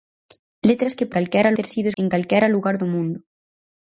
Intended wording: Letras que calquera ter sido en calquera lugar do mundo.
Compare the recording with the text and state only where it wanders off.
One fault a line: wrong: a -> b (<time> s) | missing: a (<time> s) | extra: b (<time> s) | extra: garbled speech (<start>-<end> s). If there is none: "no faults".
no faults